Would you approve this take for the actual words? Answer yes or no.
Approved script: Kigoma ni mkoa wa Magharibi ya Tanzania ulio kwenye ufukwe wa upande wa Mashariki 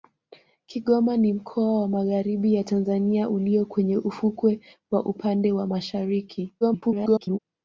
no